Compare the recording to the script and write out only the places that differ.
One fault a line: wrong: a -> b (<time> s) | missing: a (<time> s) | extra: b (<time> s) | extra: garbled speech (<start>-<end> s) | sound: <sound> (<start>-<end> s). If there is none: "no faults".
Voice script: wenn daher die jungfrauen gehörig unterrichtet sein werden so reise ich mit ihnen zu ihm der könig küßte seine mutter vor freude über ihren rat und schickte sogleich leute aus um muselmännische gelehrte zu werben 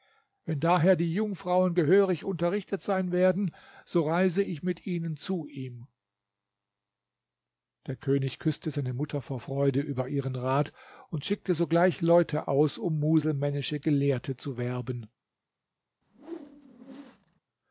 sound: whoosh (16.0-17.4 s)